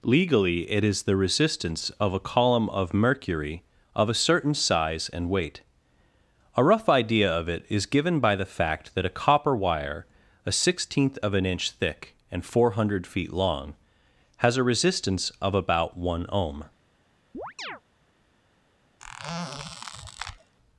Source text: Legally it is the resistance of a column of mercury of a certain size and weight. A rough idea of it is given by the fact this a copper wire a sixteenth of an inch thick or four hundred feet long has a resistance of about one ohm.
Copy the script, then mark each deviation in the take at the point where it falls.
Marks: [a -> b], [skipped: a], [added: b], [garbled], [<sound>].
Legally it is the resistance of a column of mercury of a certain size and weight. A rough idea of it is given by the fact [this -> that] a copper wire a sixteenth of an inch thick [or -> and] four hundred feet long has a resistance of about one ohm. [chirp] [squeak]